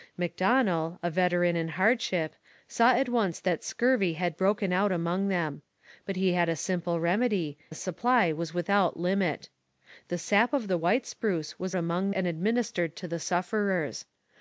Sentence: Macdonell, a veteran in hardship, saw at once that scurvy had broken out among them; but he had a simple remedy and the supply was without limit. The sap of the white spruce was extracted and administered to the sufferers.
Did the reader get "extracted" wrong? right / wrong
wrong